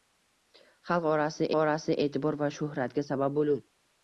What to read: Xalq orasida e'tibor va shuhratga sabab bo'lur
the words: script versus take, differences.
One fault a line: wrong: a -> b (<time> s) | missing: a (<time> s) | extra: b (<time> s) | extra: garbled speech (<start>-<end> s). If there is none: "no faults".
extra: orasida (1.6 s)